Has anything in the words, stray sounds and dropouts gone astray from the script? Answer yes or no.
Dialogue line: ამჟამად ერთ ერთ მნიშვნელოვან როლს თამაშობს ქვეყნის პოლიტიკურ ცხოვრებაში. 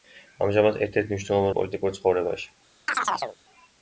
yes